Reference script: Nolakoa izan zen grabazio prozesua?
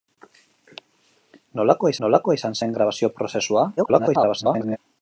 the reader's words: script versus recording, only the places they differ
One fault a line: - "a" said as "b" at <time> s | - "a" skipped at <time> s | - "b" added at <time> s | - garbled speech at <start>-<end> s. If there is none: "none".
- "nolakoa" added at 2.1 s
- garbled speech at 3.8-4.8 s